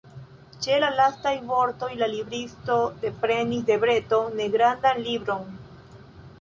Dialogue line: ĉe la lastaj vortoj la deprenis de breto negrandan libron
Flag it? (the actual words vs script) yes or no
yes